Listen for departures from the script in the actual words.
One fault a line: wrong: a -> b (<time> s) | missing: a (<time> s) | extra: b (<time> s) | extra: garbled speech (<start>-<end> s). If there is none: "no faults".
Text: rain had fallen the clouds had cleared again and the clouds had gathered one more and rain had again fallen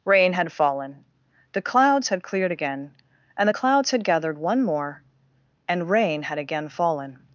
no faults